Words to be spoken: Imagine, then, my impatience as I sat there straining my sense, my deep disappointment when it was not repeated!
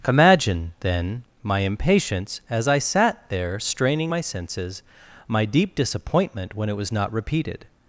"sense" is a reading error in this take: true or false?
true